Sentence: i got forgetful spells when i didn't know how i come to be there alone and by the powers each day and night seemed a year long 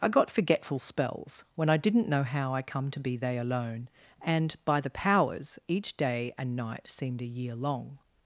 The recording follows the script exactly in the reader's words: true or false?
false